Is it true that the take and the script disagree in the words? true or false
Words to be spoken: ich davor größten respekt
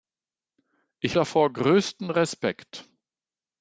false